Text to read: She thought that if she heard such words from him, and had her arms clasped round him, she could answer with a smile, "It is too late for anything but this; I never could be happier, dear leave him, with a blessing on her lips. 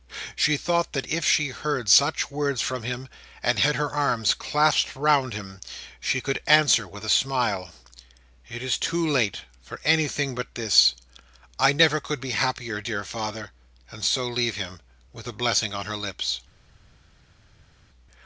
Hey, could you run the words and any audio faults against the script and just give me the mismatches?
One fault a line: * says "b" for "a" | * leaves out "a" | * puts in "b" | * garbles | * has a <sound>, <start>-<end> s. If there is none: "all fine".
* puts in "father and so"